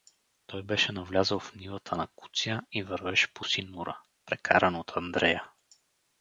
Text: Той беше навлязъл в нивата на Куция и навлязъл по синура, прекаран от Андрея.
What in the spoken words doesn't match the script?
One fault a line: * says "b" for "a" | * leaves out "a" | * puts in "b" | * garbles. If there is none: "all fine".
* says "вървеше" for "навлязъл"